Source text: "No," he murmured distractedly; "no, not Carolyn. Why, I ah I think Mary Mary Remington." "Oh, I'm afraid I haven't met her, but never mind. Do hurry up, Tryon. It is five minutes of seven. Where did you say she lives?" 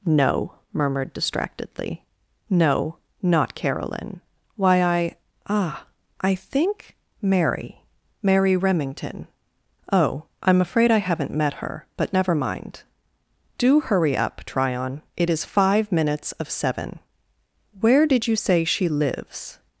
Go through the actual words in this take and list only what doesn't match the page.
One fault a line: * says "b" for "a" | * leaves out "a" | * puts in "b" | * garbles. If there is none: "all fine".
* leaves out "he"